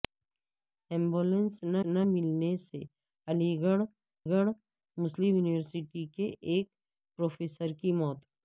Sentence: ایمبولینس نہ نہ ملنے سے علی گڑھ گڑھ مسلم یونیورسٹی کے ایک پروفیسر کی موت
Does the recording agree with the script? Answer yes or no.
yes